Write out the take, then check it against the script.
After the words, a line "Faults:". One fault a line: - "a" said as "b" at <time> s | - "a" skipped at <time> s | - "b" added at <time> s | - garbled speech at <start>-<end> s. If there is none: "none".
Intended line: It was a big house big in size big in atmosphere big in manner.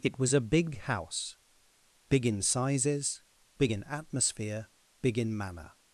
It was a big house big in sizes big in atmosphere big in manner.
Faults:
- "size" said as "sizes" at 2.4 s